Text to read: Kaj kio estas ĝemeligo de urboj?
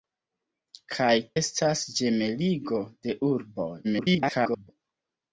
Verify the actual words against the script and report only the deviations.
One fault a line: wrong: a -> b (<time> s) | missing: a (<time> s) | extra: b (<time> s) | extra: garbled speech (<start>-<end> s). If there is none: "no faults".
missing: kio (1.1 s)
extra: garbled speech (3.8-4.7 s)